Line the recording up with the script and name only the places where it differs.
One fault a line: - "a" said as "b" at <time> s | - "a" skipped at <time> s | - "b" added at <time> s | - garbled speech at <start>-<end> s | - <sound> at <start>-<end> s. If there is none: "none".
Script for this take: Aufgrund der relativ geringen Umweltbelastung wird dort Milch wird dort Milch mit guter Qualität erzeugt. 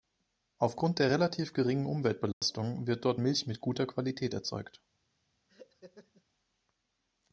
- dropout at 2.3-2.4 s
- "wird dort Milch" skipped at 3.5 s
- laugh at 5.5-6.2 s